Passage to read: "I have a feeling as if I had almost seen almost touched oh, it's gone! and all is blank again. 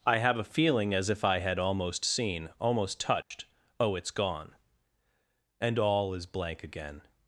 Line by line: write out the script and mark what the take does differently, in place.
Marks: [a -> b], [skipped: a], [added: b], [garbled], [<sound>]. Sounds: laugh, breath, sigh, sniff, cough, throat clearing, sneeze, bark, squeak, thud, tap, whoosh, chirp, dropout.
"I have a feeling as if I had almost seen almost touched [dropout] oh, it's gone! and all is blank again.